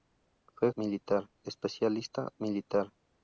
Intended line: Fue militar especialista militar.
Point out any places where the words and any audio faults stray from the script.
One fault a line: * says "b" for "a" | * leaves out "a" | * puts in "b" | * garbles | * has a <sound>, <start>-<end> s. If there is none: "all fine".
all fine